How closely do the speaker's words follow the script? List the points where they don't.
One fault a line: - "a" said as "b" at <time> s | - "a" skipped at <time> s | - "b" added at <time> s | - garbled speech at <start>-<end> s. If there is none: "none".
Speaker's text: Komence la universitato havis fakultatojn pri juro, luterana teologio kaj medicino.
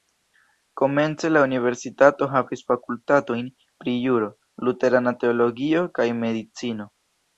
none